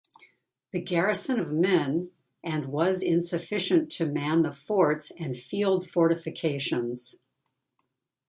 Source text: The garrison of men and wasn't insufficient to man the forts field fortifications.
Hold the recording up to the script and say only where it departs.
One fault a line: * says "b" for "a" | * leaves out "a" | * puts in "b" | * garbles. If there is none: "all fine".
* says "was" for "wasn't"
* puts in "and"